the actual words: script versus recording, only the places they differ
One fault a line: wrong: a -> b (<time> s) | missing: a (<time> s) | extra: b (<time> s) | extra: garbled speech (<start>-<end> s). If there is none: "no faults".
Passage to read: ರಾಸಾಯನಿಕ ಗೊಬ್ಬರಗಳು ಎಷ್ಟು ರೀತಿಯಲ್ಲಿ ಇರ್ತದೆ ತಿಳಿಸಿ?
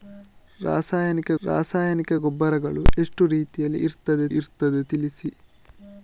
extra: ರಾಸಾಯನಿಕ (1.4 s)
extra: ಇರ್ತದೆ (4.3 s)